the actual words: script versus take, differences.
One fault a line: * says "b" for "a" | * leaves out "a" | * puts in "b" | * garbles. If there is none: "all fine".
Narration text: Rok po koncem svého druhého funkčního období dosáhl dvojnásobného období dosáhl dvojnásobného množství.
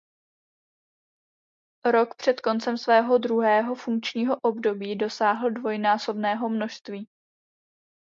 * says "před" for "po"
* leaves out "období dosáhl dvojnásobného"